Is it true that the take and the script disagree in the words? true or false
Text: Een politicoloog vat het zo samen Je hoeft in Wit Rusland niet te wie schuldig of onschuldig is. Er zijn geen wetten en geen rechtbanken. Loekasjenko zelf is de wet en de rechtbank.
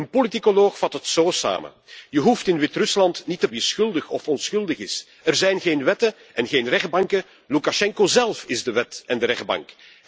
false